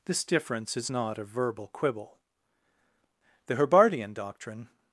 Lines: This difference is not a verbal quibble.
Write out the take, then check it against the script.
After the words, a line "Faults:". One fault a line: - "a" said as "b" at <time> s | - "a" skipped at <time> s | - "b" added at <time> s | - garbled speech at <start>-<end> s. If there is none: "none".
This difference is not a verbal quibble. The Herbartian doctrine
Faults:
- "The Herbartian doctrine" added at 3.5 s